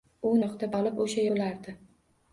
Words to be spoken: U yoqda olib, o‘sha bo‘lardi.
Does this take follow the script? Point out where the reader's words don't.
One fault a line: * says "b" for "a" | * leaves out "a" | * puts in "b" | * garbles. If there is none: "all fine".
all fine